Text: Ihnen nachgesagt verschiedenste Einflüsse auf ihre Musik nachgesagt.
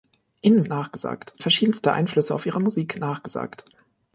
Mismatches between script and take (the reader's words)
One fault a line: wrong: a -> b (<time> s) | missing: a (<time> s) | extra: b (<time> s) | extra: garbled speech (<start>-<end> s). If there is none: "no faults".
no faults